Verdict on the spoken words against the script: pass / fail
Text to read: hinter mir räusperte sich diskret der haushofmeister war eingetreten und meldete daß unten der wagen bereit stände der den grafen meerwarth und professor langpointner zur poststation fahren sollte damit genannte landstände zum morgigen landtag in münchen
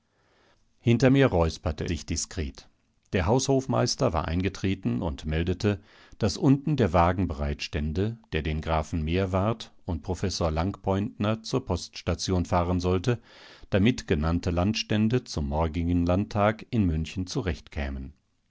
pass